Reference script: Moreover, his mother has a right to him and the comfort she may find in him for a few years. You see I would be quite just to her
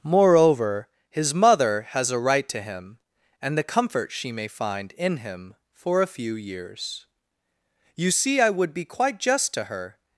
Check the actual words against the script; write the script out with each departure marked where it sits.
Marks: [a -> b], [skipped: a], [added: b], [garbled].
Moreover, his mother has a right to him and the comfort she may find in him for a few years. You see I would be quite just to her